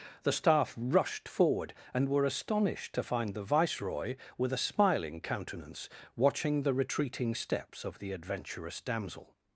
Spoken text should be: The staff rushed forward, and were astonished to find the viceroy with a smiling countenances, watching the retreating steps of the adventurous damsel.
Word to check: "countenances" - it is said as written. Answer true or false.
false